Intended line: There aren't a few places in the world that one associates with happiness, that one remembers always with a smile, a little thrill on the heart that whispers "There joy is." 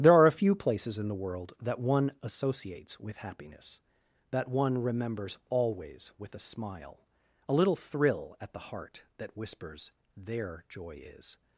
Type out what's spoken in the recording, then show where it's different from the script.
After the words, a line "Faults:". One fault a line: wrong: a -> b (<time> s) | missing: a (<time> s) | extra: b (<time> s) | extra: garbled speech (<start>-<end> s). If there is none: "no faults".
There are a few places in the world that one associates with happiness, that one remembers always with a smile, a little thrill at the heart that whispers "There joy is."
Faults:
wrong: aren't -> are (0.1 s)
wrong: on -> at (8.4 s)